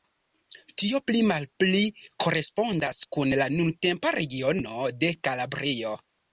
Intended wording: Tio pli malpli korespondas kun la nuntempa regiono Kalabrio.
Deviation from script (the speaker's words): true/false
true